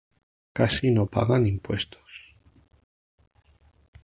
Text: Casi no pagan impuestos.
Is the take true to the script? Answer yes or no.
yes